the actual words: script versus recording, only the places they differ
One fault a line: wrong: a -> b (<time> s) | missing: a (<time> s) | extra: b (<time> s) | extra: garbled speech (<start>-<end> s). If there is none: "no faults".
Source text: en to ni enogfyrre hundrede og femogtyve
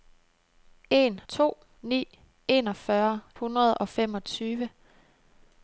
no faults